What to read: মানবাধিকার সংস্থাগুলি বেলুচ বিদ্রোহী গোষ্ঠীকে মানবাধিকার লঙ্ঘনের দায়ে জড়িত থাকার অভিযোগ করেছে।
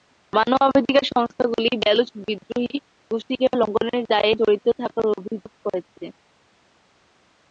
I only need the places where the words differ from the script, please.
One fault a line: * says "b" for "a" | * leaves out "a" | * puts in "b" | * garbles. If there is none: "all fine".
* leaves out "মানবাধিকার"